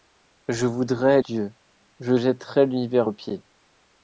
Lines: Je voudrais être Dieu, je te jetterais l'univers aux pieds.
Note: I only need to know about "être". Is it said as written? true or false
false